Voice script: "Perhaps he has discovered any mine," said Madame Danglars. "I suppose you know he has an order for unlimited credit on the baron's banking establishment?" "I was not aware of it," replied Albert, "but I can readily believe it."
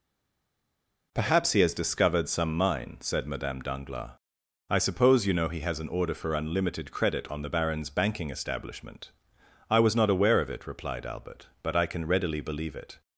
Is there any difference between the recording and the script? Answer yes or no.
yes